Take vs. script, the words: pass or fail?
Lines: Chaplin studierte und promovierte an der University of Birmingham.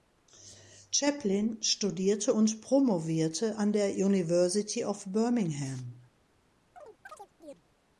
pass